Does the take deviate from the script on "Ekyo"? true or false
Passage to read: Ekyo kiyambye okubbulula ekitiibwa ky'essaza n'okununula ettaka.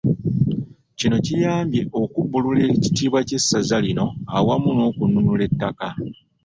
true